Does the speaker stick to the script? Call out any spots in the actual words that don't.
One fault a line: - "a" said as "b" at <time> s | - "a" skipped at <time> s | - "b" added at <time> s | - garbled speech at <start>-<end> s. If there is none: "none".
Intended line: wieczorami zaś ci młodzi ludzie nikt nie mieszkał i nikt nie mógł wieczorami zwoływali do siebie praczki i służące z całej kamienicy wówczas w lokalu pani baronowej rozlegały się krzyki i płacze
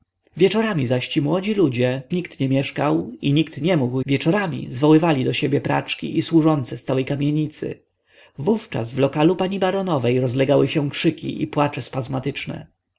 none